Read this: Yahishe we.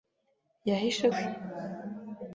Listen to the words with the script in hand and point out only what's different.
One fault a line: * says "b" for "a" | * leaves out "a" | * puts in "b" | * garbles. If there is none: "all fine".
all fine